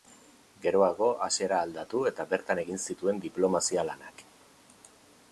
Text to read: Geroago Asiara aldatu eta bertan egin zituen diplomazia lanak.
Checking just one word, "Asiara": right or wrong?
right